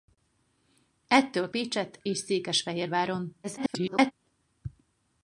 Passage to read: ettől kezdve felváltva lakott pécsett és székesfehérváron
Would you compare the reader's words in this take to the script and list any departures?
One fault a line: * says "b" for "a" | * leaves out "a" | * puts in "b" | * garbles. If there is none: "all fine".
* leaves out "kezdve felváltva lakott"
* garbles